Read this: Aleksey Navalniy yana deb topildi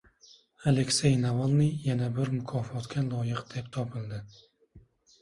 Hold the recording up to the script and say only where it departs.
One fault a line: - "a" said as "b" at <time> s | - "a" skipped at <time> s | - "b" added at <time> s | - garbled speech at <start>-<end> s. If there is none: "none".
- "bir mukofotga loyiq" added at 2.1 s